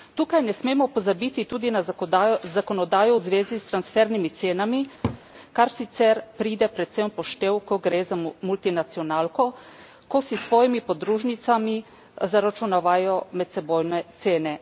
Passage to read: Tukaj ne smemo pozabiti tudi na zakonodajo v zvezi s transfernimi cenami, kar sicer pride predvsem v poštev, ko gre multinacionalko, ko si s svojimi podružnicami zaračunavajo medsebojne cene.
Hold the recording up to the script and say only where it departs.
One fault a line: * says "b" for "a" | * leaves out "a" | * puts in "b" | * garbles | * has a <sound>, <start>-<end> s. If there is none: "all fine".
* has a laugh, 5.0-5.2 s
* puts in "za"